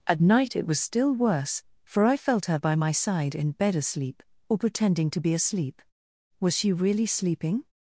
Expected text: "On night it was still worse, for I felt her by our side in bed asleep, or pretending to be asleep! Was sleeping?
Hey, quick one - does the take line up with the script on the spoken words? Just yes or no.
no